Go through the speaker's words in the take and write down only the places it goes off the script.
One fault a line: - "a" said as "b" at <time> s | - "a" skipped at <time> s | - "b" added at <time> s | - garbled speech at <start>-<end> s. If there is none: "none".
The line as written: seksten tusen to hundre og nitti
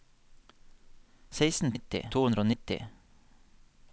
- "tusen" said as "nitti" at 1.7 s